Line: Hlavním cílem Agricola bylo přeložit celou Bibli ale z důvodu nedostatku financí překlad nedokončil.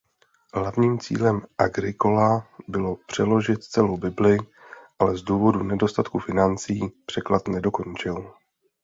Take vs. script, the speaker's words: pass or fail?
pass